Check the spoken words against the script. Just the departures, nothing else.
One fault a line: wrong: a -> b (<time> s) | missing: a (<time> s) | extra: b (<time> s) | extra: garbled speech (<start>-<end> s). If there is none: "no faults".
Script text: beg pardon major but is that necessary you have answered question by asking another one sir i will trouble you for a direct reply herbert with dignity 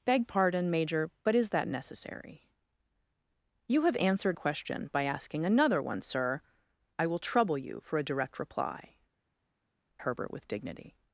no faults